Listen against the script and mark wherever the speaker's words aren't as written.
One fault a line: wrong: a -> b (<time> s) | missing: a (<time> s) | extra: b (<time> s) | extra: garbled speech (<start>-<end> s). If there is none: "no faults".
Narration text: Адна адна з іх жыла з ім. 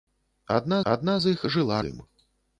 no faults